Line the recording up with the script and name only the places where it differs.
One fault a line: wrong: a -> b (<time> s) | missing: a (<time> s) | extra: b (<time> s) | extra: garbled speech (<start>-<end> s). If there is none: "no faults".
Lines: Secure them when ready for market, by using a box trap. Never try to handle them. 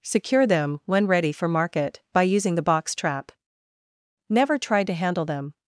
wrong: a -> the (2.5 s)